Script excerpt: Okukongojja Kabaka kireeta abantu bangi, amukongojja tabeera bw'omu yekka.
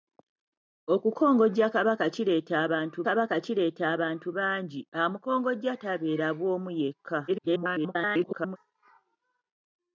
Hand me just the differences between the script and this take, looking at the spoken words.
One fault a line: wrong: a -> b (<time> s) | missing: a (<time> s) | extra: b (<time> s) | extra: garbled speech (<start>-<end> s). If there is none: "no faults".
extra: Kabaka kireeta abantu (3.0 s)
extra: garbled speech (7.3-8.6 s)